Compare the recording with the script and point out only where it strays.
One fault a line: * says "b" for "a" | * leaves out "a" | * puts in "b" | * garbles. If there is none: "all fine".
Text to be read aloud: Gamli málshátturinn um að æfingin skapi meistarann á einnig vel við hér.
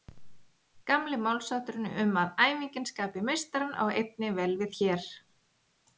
all fine